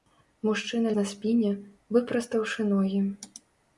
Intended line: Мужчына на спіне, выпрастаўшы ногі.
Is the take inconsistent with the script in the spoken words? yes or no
no